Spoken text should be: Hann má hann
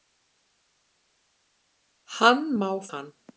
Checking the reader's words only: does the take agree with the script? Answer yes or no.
yes